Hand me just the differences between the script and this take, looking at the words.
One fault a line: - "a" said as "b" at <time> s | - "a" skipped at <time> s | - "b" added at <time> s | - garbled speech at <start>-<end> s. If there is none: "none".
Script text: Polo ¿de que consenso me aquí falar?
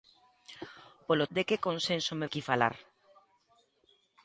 none